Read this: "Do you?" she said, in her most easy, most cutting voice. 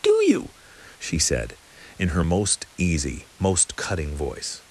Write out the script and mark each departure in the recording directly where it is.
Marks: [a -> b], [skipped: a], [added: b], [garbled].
"Do you?" she said, in her most easy, most cutting voice.